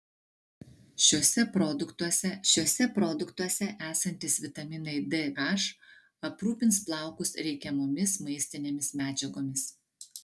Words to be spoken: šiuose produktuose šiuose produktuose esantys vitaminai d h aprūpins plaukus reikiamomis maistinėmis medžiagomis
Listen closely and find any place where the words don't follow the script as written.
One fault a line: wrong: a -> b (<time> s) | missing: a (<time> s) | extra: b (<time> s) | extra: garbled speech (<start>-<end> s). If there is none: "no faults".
no faults